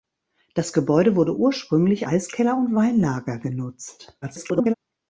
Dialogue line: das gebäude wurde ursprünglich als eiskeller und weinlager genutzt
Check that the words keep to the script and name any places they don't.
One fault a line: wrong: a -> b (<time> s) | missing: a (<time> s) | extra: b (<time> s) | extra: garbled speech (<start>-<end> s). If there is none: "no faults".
missing: als (2.1 s)
extra: garbled speech (4.2-4.7 s)